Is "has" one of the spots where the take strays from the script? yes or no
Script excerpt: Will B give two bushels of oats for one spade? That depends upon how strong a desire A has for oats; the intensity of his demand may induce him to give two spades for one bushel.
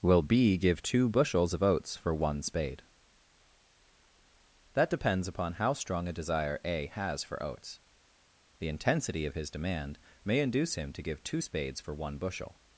no